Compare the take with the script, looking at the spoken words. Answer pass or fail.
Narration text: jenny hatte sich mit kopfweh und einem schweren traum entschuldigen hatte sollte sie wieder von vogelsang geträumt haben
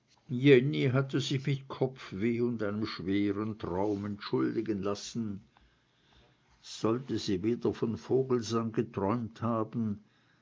fail